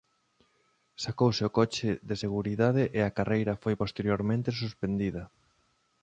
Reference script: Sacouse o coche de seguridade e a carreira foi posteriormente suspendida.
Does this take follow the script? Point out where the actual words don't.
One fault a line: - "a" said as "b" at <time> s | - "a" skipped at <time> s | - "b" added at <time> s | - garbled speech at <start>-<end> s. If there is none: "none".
none